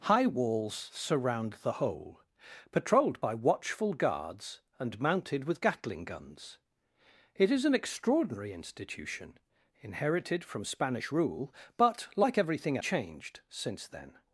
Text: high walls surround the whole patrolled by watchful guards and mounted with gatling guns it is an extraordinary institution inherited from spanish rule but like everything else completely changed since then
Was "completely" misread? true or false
true